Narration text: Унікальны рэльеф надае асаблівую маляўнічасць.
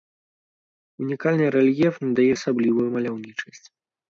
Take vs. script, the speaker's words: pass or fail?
pass